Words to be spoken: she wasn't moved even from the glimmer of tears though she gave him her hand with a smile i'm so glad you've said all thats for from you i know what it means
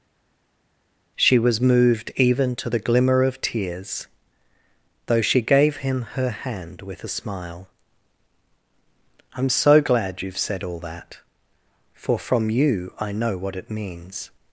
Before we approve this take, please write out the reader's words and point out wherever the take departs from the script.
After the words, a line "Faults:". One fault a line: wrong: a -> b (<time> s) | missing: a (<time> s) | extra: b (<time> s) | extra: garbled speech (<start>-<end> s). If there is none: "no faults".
she was moved even to the glimmer of tears though she gave him her hand with a smile i'm so glad you've said all that for from you i know what it means
Faults:
wrong: wasn't -> was (1.4 s)
wrong: from -> to (2.6 s)
wrong: thats -> that (10.8 s)